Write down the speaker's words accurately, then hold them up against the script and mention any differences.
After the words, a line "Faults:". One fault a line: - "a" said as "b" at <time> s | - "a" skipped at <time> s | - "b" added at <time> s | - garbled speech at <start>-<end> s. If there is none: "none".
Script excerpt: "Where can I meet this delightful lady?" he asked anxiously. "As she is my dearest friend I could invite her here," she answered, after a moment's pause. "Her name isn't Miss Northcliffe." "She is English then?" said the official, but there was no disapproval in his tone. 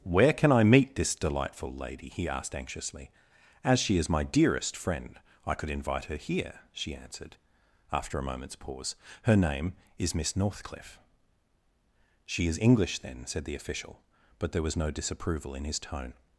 "Where can I meet this delightful lady?" he asked anxiously. "As she is my dearest friend I could invite her here," she answered, after a moment's pause. "Her name is Miss Northcliffe." "She is English then?" said the official, but there was no disapproval in his tone.
Faults:
- "isn't" said as "is" at 10.0 s